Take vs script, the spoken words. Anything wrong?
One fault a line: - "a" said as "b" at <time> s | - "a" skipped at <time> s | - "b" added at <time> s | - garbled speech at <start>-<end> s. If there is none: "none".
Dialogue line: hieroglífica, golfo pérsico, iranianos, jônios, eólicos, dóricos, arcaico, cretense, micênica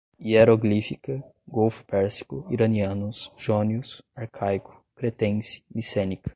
- "eólicos dóricos" skipped at 4.0 s